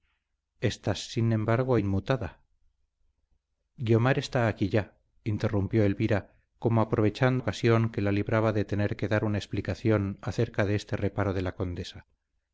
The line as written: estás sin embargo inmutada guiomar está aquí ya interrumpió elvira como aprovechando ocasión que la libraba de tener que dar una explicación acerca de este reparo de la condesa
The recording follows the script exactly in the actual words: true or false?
true